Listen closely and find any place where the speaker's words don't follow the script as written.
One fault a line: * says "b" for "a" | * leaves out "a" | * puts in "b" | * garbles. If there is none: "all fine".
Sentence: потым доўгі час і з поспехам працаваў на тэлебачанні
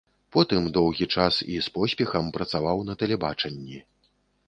all fine